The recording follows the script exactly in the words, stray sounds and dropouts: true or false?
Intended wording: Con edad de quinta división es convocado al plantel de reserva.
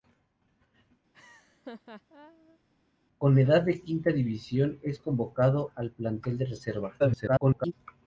false